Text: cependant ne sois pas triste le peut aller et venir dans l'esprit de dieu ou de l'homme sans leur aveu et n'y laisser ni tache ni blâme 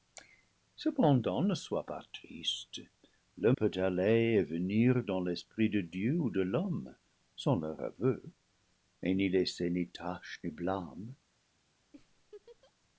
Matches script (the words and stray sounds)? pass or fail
fail